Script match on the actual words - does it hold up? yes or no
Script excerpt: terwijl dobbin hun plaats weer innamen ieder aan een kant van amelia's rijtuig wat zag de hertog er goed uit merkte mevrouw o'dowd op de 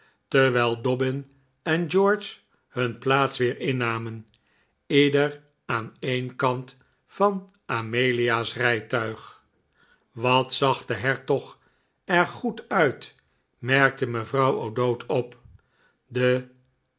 no